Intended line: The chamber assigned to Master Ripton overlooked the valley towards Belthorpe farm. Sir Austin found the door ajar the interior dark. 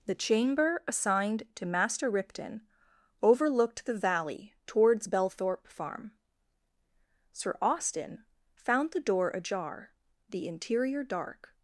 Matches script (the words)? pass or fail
pass